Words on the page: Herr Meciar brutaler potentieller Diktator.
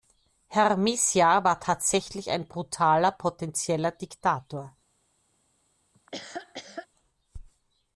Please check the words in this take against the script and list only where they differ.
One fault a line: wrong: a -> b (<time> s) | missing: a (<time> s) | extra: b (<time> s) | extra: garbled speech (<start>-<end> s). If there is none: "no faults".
extra: war tatsächlich ein (1.4 s)